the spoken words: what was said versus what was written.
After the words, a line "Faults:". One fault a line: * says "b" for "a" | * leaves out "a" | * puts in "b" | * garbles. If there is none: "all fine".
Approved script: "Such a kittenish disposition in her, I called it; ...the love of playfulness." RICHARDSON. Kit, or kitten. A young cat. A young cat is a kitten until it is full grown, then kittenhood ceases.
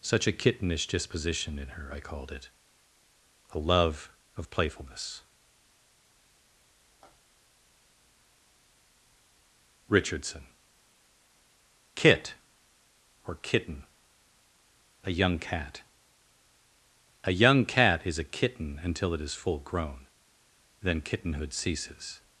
"Such a kittenish disposition in her, I called it; ...a love of playfulness." RICHARDSON. Kit, or kitten. A young cat. A young cat is a kitten until it is full grown, then kittenhood ceases.
Faults:
* says "a" for "the"